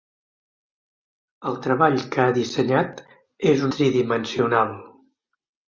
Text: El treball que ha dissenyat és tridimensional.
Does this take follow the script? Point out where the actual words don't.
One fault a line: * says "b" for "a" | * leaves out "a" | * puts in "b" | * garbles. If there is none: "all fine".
all fine